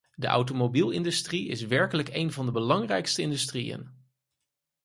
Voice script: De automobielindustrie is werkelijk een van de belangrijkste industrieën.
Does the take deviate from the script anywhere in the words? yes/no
no